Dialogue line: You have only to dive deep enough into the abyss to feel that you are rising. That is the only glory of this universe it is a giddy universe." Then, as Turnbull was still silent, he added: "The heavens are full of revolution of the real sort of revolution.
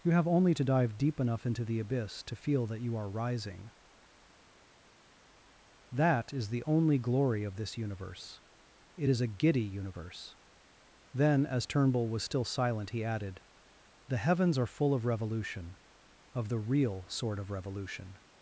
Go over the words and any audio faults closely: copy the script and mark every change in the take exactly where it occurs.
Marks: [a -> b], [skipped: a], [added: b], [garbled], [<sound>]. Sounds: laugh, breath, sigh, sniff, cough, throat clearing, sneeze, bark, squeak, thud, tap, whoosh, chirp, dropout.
You have only to dive deep enough into the abyss to feel that you are rising. That is the only glory of this universe it is a giddy universe." Then, as Turnbull was still silent, he added: "The heavens are full of revolution of the real sort of revolution.